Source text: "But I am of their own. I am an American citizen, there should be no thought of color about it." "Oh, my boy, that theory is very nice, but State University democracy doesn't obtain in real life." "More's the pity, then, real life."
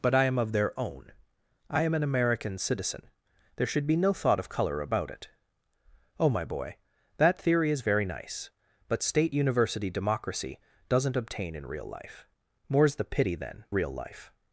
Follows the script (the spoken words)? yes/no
yes